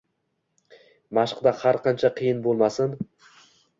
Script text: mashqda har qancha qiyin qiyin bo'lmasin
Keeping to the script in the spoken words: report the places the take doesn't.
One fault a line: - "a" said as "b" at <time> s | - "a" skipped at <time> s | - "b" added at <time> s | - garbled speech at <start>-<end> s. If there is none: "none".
- "qiyin" skipped at 2.4 s